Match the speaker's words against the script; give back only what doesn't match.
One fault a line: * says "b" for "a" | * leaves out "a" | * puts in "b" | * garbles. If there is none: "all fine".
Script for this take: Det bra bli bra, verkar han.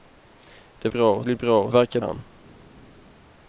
all fine